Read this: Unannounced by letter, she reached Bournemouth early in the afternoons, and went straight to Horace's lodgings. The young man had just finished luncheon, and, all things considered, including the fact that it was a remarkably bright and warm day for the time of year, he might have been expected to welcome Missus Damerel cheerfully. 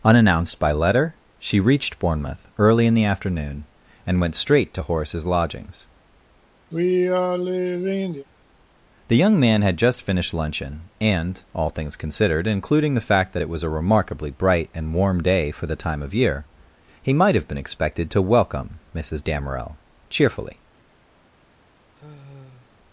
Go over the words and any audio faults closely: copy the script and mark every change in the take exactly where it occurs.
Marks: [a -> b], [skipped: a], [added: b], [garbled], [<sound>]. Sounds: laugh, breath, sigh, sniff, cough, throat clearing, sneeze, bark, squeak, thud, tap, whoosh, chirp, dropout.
Unannounced by letter, she reached Bournemouth early in the [afternoons, -> afternoon] and went straight to Horace's lodgings. [sigh] The young man had just finished luncheon, and, all things considered, including the fact that it was a remarkably bright and warm day for the time of year, he might have been expected to welcome Missus Damerel cheerfully. [sigh]